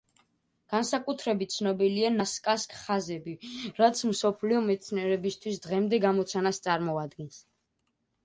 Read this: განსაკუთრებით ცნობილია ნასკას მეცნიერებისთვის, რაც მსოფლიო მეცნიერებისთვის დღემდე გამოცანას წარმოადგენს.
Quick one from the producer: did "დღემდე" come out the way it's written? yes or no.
yes